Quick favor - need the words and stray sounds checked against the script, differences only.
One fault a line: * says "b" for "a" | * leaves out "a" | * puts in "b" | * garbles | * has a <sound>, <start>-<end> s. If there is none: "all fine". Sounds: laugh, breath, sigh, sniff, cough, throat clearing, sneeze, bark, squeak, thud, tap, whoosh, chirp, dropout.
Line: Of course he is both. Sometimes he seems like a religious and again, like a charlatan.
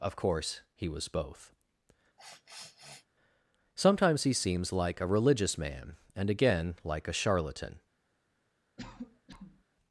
* says "was" for "is"
* has a sniff, 2.2-3.1 s
* puts in "man"
* has a cough, 8.8-9.6 s